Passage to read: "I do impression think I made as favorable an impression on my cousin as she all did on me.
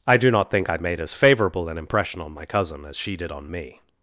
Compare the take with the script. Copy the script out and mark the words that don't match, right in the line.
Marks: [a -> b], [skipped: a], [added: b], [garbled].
"I do [impression -> not] think I made as favorable an impression on my cousin as she [skipped: all] did on me.